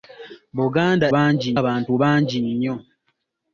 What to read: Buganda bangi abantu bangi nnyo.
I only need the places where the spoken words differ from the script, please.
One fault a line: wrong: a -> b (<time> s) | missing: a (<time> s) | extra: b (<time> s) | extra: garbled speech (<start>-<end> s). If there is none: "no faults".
no faults